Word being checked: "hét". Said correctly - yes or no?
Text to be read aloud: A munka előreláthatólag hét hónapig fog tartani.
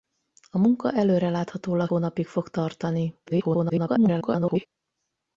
no